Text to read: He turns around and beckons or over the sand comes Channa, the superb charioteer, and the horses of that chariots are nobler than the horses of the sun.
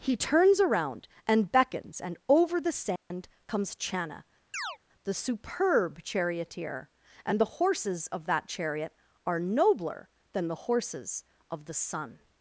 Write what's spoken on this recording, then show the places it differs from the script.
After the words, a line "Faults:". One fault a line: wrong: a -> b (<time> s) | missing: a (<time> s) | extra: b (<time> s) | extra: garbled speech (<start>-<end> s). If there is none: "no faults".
He turns around and beckons and over the sand comes Channa, the superb charioteer, and the horses of that chariot are nobler than the horses of the sun.
Faults:
wrong: or -> and (2.0 s)
wrong: chariots -> chariot (8.5 s)